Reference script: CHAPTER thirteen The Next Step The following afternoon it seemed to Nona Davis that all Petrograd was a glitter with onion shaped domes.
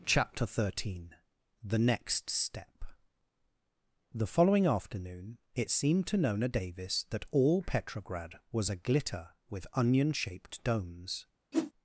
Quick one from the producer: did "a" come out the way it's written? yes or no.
yes